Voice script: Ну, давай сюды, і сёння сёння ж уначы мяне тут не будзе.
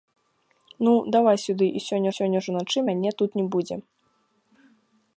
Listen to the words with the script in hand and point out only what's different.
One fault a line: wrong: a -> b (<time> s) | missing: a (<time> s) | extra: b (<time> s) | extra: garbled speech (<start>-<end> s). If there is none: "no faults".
no faults